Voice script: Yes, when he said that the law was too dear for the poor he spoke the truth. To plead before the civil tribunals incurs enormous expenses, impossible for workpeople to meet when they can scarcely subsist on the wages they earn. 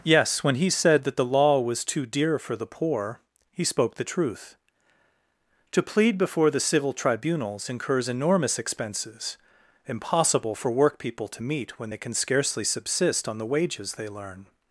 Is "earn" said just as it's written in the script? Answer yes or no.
no